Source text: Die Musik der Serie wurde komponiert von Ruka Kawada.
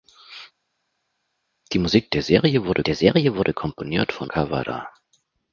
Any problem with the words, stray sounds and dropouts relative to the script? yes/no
yes